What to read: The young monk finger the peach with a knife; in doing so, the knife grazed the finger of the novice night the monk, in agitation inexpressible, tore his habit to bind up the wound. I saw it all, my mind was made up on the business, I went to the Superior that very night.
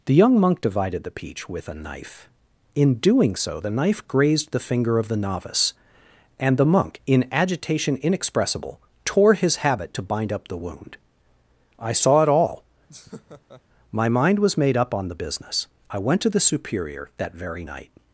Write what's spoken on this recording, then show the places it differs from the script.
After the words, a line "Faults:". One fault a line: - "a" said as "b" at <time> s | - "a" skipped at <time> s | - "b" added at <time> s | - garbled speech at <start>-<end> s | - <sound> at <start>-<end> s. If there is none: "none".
The young monk divided the peach with a knife; in doing so, the knife grazed the finger of the novice and the monk, in agitation inexpressible, tore his habit to bind up the wound. I saw it all, my mind was made up on the business, I went to the Superior that very night.
Faults:
- "finger" said as "divided" at 0.6 s
- "night" said as "and" at 6.4 s
- laugh at 12.9-13.6 s